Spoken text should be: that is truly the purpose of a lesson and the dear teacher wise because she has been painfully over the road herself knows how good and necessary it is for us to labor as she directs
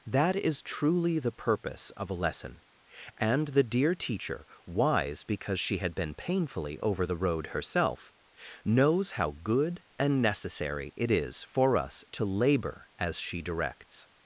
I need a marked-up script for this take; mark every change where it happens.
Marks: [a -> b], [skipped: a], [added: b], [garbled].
that is truly the purpose of a lesson and the dear teacher wise because she [has -> had] been painfully over the road herself knows how good and necessary it is for us to labor as she directs